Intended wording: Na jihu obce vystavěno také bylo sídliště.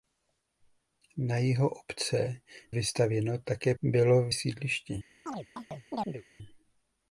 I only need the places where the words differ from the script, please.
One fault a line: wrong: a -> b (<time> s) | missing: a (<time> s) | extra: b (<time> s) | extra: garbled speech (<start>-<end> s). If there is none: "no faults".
no faults